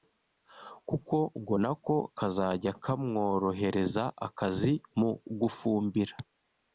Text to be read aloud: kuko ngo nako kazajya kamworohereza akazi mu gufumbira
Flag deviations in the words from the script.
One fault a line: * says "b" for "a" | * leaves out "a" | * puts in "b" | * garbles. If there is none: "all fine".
all fine